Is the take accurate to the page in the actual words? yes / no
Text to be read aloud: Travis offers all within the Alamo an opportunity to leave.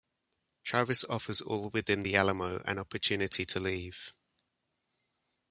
yes